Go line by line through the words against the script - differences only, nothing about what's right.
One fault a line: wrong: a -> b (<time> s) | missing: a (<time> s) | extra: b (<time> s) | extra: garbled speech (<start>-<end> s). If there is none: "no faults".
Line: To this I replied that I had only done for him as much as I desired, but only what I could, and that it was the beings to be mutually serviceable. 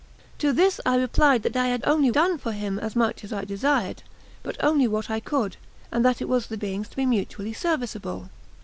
no faults